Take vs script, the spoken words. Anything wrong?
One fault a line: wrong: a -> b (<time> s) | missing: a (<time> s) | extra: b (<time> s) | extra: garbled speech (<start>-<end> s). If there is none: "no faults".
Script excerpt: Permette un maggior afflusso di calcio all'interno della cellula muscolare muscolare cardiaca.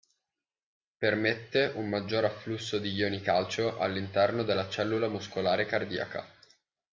extra: ioni (2.9 s)
missing: muscolare (5.7 s)